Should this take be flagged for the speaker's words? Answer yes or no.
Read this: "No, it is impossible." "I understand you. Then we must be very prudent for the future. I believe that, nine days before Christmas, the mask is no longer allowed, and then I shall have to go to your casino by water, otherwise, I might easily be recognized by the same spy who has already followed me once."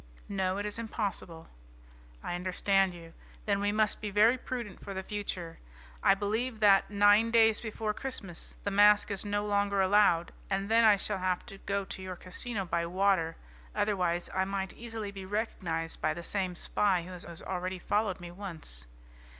yes